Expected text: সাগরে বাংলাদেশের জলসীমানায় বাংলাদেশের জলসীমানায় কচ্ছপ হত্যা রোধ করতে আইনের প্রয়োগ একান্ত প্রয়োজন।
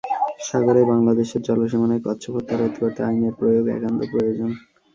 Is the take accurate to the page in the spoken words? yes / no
no